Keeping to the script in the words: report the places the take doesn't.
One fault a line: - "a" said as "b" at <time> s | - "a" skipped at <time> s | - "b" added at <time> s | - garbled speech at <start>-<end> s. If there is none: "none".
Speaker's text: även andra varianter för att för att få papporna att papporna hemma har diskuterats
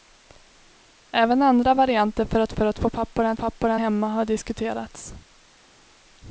none